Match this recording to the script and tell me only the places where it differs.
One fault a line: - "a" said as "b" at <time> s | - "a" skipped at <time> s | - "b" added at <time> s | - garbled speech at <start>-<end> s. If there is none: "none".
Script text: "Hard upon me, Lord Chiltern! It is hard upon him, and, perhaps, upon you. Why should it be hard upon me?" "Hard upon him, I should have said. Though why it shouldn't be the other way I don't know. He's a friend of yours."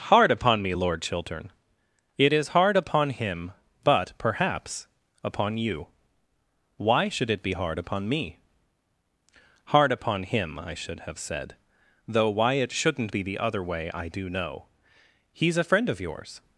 - "and" said as "but" at 3.8 s
- "don't" said as "do" at 14.1 s